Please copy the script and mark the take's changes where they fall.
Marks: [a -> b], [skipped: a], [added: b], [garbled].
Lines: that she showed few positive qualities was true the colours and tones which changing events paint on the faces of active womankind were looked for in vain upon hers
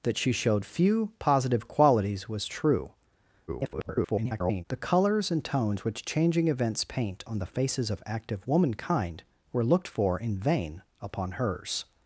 that she showed few positive qualities was true [garbled] the colours and tones which changing events paint on the faces of active womankind were looked for in vain upon hers